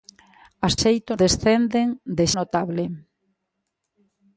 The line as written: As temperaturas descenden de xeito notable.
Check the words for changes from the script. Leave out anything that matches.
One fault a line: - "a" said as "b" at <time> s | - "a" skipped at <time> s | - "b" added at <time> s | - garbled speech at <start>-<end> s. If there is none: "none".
- "temperaturas" said as "xeito" at 0.8 s
- "xeito" skipped at 2.3 s